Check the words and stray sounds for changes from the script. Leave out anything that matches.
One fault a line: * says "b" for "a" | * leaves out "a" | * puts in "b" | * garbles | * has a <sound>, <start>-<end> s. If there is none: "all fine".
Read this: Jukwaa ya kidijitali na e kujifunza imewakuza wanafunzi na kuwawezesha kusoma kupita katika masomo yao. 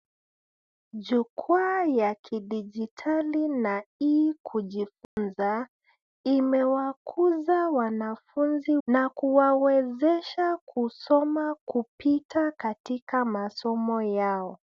* has a dropout, 5.0-5.2 s